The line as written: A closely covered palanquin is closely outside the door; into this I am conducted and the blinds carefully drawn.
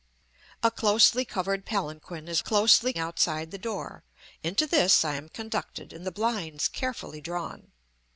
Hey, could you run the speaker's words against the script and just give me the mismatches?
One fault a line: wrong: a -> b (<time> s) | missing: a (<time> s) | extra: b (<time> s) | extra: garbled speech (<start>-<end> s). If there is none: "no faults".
no faults